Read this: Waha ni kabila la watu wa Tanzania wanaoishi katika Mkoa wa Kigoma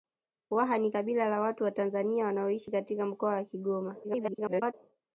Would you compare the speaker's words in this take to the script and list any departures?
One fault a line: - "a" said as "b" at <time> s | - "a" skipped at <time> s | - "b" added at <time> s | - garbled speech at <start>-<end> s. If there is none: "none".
- garbled speech at 4.0-4.7 s